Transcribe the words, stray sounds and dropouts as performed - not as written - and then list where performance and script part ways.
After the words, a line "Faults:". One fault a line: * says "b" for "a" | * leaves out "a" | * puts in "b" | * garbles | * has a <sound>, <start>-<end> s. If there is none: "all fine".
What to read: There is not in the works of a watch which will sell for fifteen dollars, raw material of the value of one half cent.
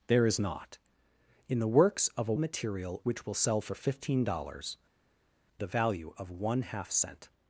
There is not in the works of a material which will sell for fifteen dollars, the value of one half cent.
Faults:
* says "material" for "watch"
* leaves out "raw material of"